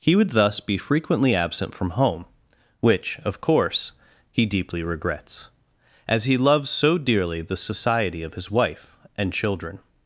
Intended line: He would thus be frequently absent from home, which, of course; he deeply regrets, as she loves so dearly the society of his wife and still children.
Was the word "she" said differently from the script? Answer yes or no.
yes